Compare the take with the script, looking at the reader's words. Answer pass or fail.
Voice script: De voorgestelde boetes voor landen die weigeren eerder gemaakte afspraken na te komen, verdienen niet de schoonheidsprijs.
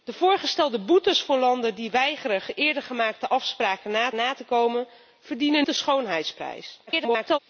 fail